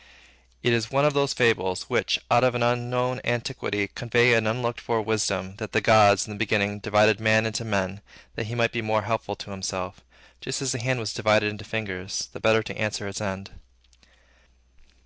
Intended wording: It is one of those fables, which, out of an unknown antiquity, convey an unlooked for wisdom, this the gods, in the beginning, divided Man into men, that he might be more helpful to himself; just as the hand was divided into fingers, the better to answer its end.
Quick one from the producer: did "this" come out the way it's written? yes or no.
no